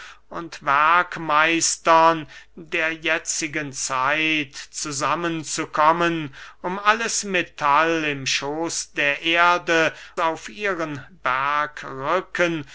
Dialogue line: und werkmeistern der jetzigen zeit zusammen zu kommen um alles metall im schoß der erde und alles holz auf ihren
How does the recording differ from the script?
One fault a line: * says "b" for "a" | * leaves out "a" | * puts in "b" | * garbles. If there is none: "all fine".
* leaves out "und alles holz"